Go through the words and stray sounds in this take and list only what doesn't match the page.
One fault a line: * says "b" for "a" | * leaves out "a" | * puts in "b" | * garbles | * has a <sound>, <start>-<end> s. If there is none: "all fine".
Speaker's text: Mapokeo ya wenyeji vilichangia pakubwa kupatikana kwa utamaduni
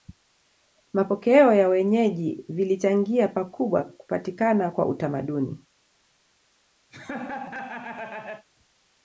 * has a laugh, 6.9-8.5 s